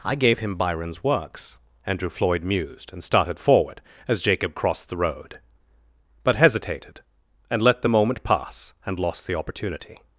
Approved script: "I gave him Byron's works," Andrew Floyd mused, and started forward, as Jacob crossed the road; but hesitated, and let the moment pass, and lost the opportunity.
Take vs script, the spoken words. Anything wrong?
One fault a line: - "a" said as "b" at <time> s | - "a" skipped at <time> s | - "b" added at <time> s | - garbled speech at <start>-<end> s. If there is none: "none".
none